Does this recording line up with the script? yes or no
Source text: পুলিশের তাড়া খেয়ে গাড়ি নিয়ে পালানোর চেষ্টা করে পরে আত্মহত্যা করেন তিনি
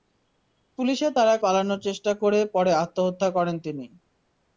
no